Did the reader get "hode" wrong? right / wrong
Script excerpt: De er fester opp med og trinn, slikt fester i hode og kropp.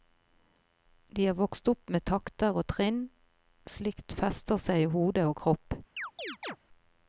right